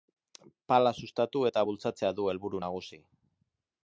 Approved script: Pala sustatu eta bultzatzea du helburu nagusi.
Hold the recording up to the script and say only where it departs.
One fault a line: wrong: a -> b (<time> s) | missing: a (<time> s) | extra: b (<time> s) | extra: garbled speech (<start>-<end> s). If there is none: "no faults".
no faults